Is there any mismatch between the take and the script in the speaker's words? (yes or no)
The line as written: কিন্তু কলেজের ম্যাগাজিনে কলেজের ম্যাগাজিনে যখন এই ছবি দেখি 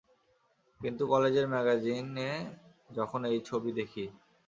yes